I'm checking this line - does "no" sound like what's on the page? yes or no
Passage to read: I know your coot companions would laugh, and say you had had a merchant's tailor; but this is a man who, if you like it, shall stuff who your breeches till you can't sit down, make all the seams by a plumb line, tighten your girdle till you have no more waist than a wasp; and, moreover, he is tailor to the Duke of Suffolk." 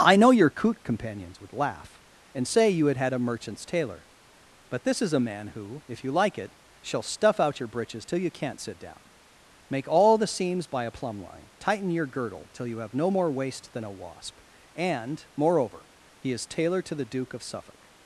yes